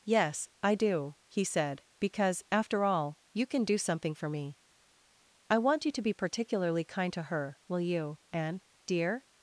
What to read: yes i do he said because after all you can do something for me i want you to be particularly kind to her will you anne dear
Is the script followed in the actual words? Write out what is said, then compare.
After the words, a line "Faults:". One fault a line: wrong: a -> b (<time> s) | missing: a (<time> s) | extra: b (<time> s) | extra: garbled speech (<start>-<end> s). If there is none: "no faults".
yes i do he said because after all you can do something for me i want you to be particularly kind to her will you anne dear
Faults:
no faults